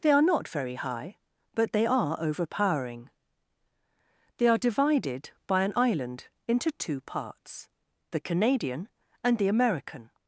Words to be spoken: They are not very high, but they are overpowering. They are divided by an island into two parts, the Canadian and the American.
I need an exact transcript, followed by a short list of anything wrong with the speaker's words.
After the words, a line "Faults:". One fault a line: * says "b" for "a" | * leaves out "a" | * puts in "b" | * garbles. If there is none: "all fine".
They are not very high, but they are overpowering. They are divided by an island into two parts, the Canadian and the American.
Faults:
all fine